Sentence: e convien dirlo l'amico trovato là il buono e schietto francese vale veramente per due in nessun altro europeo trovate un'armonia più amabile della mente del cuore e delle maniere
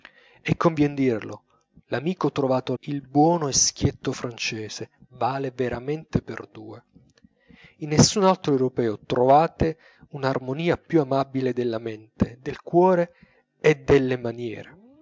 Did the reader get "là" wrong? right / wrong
wrong